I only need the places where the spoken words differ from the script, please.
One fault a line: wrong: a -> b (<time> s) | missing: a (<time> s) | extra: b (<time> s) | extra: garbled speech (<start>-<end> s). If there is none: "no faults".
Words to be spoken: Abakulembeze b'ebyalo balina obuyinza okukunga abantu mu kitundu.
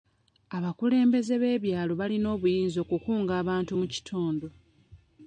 no faults